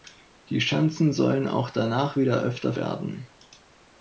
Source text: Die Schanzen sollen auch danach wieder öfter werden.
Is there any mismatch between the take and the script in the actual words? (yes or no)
no